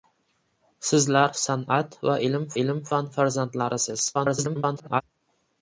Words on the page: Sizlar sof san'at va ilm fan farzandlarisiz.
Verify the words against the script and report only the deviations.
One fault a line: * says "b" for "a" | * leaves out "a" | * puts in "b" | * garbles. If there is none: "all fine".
* leaves out "sof"
* puts in "ilm"
* garbles